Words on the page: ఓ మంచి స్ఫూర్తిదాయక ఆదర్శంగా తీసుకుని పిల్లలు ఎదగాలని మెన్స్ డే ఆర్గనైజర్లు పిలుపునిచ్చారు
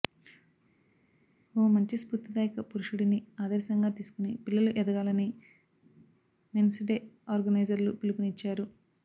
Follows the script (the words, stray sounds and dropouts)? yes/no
no